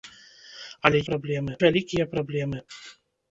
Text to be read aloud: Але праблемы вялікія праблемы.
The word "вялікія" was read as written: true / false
true